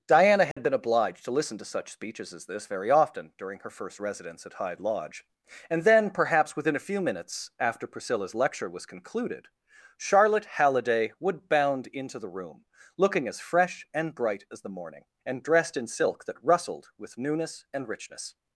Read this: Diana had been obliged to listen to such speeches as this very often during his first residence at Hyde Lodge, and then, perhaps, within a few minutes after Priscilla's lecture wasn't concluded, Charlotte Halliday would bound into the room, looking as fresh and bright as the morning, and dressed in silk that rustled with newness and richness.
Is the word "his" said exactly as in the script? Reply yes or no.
no